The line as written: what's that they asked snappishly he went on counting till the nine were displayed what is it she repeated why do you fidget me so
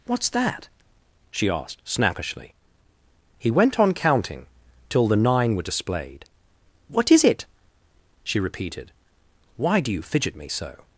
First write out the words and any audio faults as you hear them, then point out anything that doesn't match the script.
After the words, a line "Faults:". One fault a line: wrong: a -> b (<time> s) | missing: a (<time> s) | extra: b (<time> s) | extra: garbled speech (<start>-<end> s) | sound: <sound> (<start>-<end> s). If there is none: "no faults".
what's that she asked snappishly he went on counting till the nine were displayed what is it she repeated why do you fidget me so
Faults:
wrong: they -> she (1.3 s)